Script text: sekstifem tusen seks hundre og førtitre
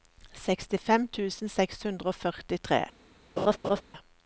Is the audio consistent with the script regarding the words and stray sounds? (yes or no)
no